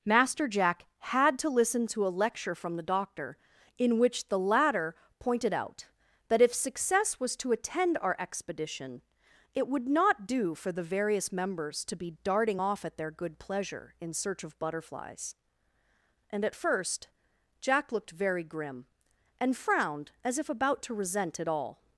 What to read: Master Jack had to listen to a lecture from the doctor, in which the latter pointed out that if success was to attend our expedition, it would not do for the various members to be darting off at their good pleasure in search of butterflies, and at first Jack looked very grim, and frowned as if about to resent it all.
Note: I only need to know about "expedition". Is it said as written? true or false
true